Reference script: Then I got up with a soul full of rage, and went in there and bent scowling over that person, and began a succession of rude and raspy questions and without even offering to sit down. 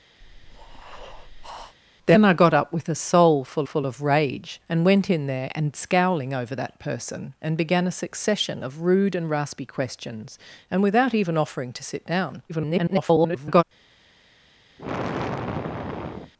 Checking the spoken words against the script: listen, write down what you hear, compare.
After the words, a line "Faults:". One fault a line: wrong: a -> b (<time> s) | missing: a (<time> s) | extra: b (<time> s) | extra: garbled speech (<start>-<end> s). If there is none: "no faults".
Then I got up with a soul full full of rage, and went in there and scowling over that person, and began a succession of rude and raspy questions and without even offering to sit down. [garbled]
Faults:
extra: full (3.6 s)
missing: bent (5.7 s)
extra: garbled speech (12.5-13.6 s)